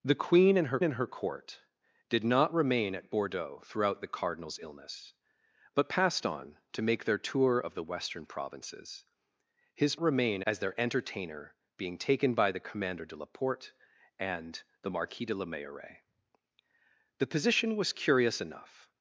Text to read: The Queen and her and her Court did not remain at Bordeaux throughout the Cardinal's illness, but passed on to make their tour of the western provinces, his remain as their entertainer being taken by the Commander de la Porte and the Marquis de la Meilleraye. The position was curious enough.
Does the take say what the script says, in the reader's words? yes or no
yes